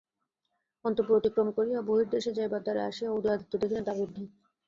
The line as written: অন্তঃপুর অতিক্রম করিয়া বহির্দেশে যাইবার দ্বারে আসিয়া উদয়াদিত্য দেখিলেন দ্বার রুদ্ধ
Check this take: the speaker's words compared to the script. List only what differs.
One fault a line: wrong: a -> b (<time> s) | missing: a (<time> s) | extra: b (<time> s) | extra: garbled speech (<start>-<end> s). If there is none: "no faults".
no faults